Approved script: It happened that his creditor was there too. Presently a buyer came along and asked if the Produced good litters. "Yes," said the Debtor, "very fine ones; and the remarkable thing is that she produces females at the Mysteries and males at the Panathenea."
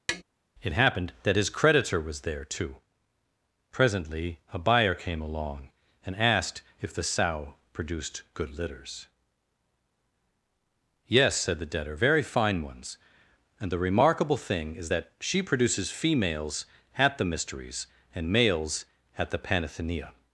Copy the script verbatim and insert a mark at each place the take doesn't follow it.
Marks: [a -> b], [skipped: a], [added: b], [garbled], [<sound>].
[tap] It happened that his creditor was there too. Presently a buyer came along and asked if the [added: Sow] Produced good litters. "Yes," said the Debtor, "very fine ones; and the remarkable thing is that she produces females at the Mysteries and males at the Panathenea."